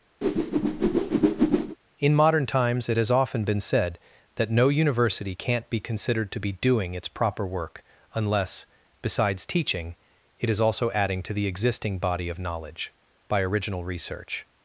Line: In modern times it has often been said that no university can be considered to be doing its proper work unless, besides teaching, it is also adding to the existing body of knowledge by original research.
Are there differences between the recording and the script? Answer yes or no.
yes